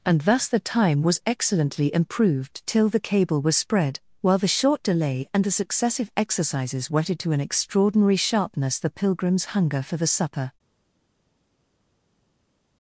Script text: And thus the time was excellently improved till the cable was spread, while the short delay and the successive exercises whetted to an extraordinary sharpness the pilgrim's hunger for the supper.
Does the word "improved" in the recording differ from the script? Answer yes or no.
no